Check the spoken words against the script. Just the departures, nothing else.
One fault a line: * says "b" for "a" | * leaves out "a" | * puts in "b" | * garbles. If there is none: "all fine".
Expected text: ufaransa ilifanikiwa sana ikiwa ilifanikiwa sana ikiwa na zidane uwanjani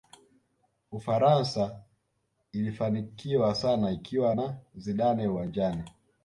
* leaves out "ilifanikiwa sana ikiwa"